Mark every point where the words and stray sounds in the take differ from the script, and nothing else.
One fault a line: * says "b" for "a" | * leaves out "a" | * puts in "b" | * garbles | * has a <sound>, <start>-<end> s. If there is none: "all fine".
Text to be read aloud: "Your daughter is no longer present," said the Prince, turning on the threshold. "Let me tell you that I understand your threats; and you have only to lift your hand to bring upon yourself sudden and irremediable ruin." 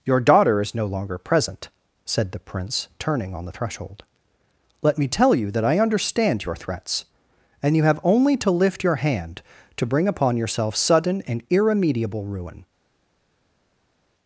all fine